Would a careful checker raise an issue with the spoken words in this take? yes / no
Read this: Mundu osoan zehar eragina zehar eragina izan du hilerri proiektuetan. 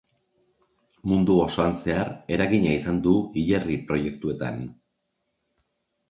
yes